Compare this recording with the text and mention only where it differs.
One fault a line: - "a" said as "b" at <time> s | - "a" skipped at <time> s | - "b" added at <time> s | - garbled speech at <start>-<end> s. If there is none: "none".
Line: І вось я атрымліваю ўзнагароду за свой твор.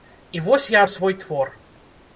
- "атрымліваю ўзнагароду" skipped at 0.8 s